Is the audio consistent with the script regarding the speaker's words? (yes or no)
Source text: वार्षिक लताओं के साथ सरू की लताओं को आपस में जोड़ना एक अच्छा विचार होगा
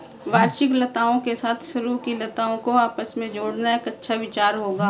yes